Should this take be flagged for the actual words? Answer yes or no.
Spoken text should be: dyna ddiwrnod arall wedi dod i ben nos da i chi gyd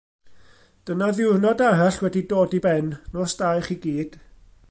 no